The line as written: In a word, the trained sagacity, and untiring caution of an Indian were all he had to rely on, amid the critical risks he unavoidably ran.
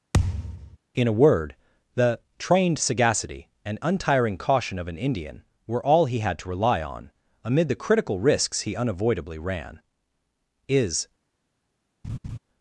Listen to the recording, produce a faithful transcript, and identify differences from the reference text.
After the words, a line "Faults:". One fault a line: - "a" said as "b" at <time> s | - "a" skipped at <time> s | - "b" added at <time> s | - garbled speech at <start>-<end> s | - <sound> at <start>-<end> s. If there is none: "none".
In a word, the trained sagacity, and untiring caution of an Indian were all he had to rely on, amid the critical risks he unavoidably ran. "Is
Faults:
- thud at 0.1-0.8 s
- "Is" added at 10.7 s
- laugh at 12.0-12.4 s